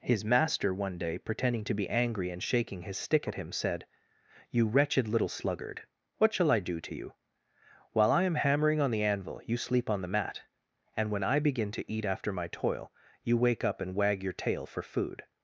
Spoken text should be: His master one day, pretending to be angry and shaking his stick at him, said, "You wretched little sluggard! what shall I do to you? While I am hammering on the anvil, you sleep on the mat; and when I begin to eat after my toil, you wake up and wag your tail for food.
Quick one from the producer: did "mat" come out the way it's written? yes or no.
yes